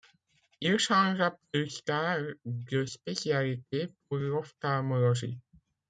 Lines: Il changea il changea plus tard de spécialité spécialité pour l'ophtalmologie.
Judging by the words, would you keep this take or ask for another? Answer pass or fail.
fail